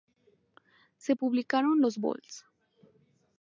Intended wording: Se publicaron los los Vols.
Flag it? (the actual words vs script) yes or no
yes